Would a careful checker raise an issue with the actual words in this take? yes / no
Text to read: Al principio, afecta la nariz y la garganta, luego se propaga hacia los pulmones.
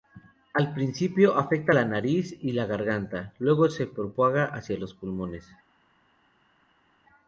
no